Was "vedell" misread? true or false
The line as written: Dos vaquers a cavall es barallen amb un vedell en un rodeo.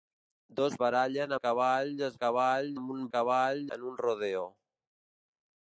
true